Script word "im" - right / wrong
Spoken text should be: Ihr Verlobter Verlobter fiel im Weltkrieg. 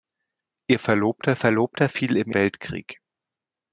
right